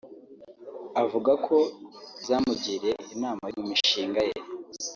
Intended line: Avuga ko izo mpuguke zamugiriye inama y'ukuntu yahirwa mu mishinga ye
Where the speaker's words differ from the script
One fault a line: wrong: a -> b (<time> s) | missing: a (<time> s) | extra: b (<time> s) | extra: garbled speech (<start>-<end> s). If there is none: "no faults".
missing: izo mpuguke (1.6 s)
missing: y'ukuntu yahirwa (3.5 s)